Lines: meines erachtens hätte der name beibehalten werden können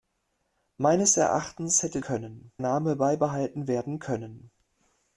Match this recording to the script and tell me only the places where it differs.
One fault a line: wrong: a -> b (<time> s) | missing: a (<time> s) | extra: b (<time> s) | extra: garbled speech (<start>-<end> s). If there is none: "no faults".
wrong: der -> können (2.0 s)